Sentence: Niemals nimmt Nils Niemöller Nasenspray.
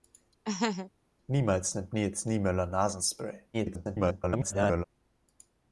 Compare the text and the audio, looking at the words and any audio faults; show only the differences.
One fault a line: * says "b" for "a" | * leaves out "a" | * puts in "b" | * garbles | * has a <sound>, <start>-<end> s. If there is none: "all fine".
* has a laugh, 0.4-0.9 s
* garbles